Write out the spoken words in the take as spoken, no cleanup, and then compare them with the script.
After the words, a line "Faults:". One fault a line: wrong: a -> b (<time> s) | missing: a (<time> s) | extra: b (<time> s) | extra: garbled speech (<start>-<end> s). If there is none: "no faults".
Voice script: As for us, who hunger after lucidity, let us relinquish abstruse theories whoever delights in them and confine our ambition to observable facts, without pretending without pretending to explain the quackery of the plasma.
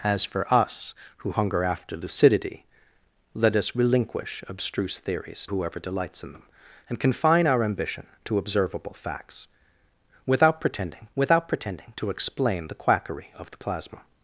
As for us, who hunger after lucidity, let us relinquish abstruse theories whoever delights in them and confine our ambition to observable facts, without pretending without pretending to explain the quackery of the plasma.
Faults:
no faults